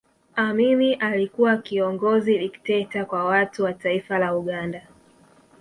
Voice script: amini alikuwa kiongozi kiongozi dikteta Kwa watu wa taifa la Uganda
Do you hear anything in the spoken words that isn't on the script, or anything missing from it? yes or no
yes